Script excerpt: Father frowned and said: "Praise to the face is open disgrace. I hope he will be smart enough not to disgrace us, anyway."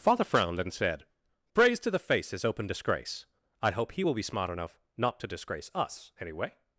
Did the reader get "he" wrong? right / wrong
right